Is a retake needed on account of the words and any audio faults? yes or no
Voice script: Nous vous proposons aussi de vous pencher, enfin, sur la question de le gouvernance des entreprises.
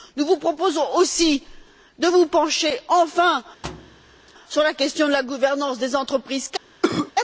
yes